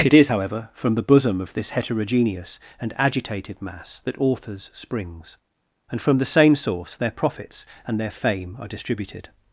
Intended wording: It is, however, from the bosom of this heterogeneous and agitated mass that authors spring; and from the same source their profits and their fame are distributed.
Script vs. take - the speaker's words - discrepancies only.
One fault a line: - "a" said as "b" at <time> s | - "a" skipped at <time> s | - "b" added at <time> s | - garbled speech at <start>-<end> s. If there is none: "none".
- "spring" said as "springs" at 4.7 s